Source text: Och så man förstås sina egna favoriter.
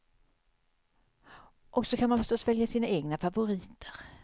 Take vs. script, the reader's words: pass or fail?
fail